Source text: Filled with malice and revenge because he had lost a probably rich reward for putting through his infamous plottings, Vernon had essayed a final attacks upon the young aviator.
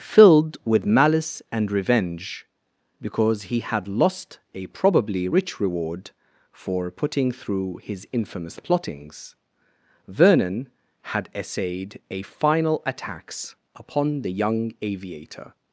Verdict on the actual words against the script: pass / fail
pass